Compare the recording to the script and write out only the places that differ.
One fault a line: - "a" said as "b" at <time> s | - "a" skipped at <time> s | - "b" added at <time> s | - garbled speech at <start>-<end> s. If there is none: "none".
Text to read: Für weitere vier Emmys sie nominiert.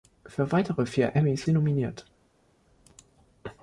none